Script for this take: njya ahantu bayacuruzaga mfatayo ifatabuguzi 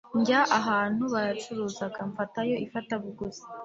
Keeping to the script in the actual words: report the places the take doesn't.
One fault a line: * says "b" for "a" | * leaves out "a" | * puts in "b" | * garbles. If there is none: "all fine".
all fine